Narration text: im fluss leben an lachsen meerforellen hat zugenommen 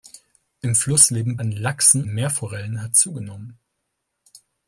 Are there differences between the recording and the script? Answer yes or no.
no